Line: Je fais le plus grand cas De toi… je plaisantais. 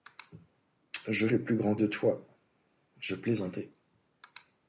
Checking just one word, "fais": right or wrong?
wrong